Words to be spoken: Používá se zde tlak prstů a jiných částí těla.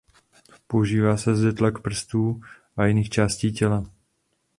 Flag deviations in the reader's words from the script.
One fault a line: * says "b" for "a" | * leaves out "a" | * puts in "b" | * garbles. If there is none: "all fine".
all fine